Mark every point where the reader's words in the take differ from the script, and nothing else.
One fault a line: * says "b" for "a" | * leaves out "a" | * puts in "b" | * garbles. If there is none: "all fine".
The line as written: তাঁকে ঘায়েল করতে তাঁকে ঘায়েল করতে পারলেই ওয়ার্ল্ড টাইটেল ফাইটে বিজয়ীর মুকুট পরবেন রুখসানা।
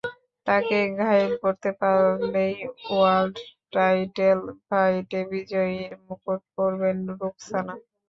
* leaves out "তাঁকে ঘায়েল করতে"